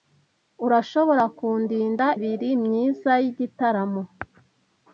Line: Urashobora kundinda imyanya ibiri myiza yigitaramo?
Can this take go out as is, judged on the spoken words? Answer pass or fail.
fail